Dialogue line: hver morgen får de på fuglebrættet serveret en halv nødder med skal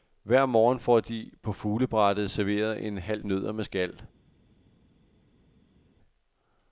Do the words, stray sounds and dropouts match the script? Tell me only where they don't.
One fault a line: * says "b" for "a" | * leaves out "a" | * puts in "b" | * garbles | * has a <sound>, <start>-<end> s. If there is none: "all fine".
all fine